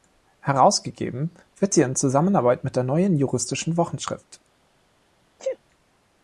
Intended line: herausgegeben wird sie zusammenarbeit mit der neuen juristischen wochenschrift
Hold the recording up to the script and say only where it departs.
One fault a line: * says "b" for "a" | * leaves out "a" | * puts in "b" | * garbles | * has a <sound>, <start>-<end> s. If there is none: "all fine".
* puts in "in"
* has a sneeze, 5.4-5.6 s